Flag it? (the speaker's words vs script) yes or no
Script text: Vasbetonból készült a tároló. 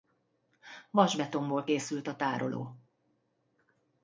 no